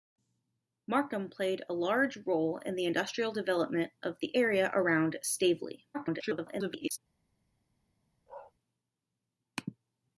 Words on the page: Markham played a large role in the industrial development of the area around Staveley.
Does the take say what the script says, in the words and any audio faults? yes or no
no